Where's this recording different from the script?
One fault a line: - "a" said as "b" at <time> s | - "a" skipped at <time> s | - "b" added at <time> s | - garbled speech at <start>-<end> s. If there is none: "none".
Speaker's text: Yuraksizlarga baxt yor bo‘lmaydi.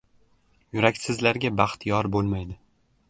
none